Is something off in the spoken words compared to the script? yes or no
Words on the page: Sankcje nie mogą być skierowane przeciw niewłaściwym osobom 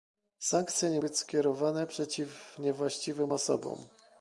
yes